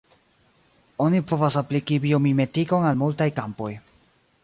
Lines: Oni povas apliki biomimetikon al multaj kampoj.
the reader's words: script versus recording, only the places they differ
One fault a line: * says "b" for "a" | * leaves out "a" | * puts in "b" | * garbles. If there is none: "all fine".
all fine